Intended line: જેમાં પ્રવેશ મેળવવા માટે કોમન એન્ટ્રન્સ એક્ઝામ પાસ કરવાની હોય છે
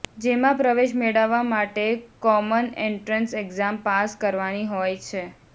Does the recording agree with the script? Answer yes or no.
yes